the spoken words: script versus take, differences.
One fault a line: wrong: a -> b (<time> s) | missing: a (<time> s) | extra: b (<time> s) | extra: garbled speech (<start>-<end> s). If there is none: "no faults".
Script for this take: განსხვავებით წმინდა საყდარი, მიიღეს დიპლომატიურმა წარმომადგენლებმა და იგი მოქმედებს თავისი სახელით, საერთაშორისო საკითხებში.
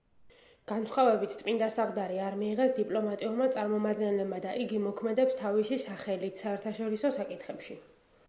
extra: არ (2.3 s)